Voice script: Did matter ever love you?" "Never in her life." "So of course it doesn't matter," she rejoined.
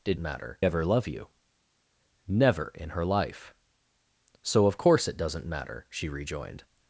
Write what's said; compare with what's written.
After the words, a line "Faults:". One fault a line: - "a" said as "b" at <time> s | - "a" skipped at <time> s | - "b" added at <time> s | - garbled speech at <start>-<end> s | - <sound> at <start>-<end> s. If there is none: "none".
Did matter ever love you?" "Never in her life." "So of course it doesn't matter," she rejoined.
Faults:
none